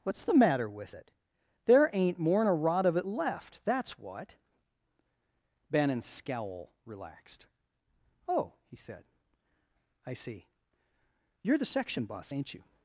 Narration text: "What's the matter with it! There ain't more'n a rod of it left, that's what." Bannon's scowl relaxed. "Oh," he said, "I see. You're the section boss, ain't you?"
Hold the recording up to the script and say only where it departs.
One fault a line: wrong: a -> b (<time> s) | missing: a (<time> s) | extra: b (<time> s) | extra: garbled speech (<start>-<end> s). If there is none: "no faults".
no faults